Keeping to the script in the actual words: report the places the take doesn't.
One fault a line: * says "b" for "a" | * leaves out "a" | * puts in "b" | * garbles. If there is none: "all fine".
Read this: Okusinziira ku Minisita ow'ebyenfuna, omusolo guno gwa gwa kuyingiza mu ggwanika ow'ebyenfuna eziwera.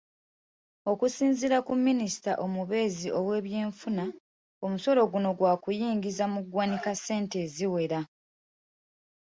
* puts in "omubeezi"
* leaves out "gwa"
* says "ssente" for "ow'ebyenfuna"